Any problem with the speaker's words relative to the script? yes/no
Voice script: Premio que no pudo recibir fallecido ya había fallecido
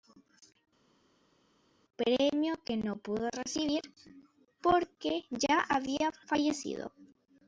yes